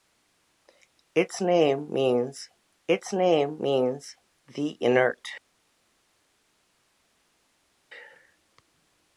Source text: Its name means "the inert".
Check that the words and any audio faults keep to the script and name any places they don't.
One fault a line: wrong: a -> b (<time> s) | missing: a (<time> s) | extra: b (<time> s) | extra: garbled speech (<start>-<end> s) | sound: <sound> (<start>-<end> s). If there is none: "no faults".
extra: its name means (2.9 s)